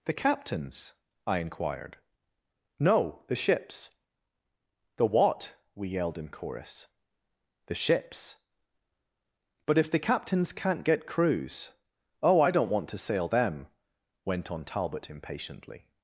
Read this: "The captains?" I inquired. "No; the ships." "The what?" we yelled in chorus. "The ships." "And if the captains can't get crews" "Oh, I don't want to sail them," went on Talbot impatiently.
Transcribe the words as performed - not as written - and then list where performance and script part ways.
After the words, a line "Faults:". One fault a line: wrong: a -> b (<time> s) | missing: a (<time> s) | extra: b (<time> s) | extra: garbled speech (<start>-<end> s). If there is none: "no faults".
"The captains?" I inquired. "No; the ships." "The what?" we yelled in chorus. "The ships." "But if the captains can't get crews" "Oh, I don't want to sail them," went on Talbot impatiently.
Faults:
wrong: And -> But (9.7 s)